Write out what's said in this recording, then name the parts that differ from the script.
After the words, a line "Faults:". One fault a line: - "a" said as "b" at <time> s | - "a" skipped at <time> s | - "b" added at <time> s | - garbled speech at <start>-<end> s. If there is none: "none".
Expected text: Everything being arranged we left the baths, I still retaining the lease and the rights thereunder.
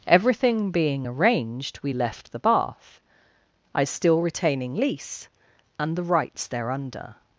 Everything being arranged we left the bath, I still retaining lease and the rights thereunder.
Faults:
- "baths" said as "bath" at 2.4 s
- "the" skipped at 4.7 s